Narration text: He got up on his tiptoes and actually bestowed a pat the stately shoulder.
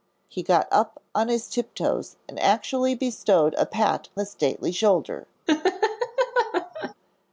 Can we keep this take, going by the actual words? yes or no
yes